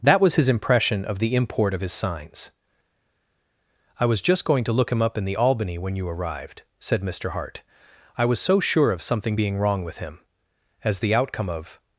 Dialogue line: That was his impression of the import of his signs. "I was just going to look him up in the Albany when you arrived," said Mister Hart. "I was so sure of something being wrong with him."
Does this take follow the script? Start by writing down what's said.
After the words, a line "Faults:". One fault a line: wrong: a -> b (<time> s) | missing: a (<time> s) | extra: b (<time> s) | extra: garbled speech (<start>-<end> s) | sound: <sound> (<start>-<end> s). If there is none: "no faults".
That was his impression of the import of his signs. "I was just going to look him up in the Albany when you arrived," said Mister Hart. "I was so sure of something being wrong with him." As the outcome of
Faults:
extra: As the outcome of (10.8 s)